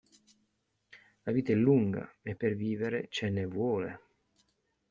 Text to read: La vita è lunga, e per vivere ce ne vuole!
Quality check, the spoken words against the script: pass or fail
pass